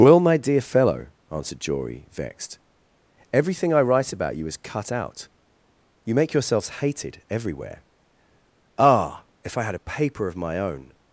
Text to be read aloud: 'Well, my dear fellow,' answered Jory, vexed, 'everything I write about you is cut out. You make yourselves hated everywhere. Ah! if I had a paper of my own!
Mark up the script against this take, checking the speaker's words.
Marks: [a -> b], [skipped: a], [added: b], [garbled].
'Well, my dear fellow,' answered Jory, vexed, 'everything I write about you is cut out. You make yourselves hated everywhere. Ah! if I had a paper of my own!